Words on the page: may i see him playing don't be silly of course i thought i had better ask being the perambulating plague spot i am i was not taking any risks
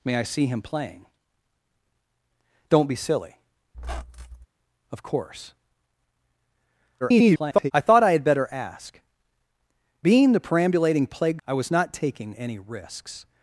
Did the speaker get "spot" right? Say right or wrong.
wrong